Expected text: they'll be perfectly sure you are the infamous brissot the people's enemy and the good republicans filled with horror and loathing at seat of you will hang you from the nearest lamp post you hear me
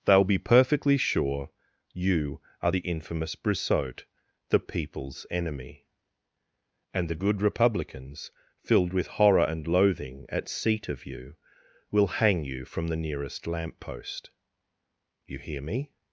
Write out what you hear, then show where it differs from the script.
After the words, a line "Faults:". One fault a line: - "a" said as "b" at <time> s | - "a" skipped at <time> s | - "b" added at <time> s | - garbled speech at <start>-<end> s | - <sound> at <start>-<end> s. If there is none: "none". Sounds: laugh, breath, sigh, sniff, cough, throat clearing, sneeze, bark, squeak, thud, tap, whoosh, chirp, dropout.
they'll be perfectly sure you are the infamous brissot the people's enemy and the good republicans filled with horror and loathing at seat of you will hang you from the nearest lamp post you hear me
Faults:
none